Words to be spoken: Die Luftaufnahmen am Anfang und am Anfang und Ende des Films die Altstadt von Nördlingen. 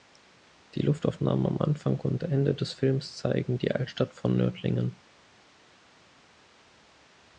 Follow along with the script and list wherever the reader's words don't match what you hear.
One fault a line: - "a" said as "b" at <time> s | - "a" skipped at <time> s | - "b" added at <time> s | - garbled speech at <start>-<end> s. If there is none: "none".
- "am Anfang und" skipped at 2.2 s
- "zeigen" added at 3.2 s